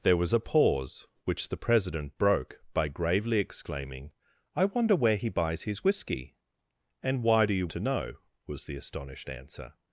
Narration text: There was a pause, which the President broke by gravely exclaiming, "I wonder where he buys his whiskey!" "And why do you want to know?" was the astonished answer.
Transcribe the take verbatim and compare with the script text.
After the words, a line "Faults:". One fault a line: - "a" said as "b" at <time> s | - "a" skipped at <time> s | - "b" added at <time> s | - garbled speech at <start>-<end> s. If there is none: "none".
There was a pause, which the President broke by gravely exclaiming, "I wonder where he buys his whiskey!" "And why do you to know?" was the astonished answer.
Faults:
- "want" skipped at 7.7 s